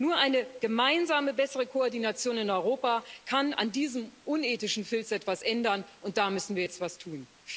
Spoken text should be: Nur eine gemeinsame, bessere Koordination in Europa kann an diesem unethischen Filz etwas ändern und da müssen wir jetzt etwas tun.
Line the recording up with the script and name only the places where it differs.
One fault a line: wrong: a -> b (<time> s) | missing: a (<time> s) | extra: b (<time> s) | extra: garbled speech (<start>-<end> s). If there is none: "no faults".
no faults